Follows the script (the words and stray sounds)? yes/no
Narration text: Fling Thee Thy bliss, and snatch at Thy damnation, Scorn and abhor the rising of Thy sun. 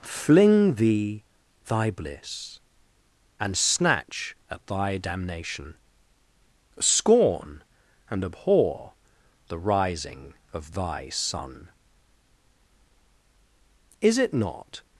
no